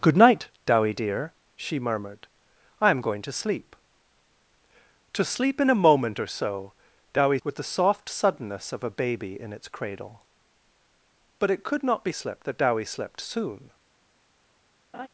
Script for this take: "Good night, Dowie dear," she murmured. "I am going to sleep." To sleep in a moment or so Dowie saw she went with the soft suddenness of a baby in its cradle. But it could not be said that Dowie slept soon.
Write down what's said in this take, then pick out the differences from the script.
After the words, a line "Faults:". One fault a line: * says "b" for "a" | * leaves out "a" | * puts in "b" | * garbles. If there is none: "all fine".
"Good night, Dowie dear," she murmured. "I am going to sleep." To sleep in a moment or so Dowie with the soft suddenness of a baby in its cradle. But it could not be slept that Dowie slept soon.
Faults:
* leaves out "saw she went"
* says "slept" for "said"